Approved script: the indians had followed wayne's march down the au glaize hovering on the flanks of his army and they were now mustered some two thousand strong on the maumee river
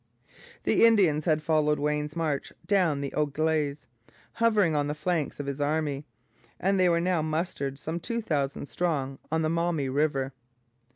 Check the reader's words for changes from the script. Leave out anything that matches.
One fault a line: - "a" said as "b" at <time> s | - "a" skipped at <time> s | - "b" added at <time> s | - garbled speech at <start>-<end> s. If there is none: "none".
none